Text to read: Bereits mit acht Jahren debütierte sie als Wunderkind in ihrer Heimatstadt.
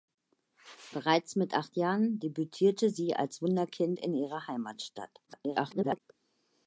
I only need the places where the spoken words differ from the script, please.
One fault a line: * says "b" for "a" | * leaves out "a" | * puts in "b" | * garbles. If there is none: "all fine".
* garbles